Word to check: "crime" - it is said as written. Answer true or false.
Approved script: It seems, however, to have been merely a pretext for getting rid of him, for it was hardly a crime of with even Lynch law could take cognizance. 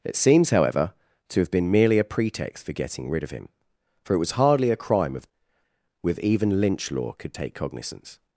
true